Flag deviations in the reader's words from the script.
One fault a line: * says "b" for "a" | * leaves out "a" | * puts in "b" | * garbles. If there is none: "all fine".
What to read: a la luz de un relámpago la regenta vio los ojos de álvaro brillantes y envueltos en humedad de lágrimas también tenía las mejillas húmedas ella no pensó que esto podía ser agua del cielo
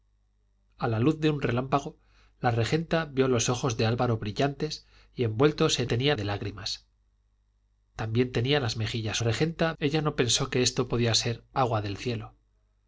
* says "tenía" for "humedad"
* says "regenta" for "húmedas"